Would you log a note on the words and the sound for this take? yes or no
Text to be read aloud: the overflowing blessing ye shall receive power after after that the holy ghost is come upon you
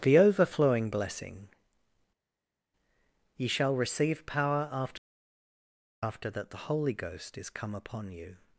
no